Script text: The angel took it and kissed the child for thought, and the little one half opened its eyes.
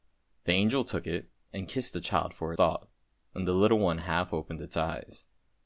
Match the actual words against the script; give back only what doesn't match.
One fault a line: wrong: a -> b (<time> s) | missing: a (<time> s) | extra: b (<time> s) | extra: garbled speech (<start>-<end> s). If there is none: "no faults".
no faults